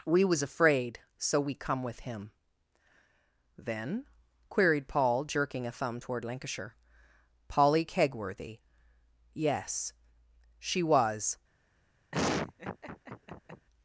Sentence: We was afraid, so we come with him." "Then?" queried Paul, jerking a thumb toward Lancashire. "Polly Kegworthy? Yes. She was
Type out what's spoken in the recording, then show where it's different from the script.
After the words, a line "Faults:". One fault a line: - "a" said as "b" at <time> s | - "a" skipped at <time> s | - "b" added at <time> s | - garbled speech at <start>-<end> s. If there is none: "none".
We was afraid, so we come with him." "Then?" queried Paul, jerking a thumb toward Lancashire. "Polly Kegworthy? Yes. She was
Faults:
none